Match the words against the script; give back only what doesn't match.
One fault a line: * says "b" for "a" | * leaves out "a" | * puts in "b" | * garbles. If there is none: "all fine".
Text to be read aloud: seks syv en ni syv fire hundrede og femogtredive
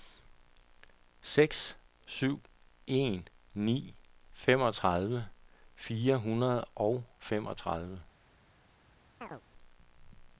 * says "femogtredive" for "syv"